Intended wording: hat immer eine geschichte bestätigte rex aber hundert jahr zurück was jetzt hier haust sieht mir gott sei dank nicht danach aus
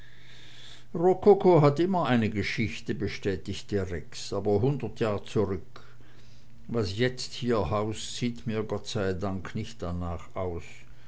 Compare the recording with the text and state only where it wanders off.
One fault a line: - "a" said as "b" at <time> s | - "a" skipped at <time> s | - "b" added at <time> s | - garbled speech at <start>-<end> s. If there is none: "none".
none